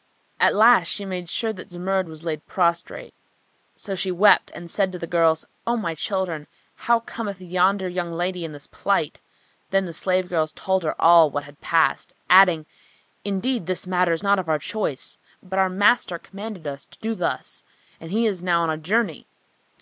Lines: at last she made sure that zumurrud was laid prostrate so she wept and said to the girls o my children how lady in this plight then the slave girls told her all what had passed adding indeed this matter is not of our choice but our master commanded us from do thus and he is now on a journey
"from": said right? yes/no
no